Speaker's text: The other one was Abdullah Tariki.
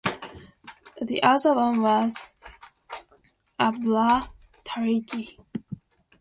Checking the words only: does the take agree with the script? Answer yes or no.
yes